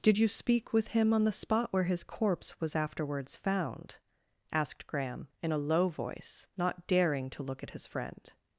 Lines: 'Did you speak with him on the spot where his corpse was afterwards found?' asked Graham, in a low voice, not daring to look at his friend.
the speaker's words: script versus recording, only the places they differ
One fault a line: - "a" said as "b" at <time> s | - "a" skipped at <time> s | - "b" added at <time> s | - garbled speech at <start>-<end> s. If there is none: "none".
none